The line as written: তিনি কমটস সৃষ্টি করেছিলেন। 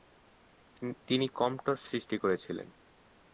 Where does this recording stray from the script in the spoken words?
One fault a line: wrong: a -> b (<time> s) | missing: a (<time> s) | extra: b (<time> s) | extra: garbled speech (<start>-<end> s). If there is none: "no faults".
no faults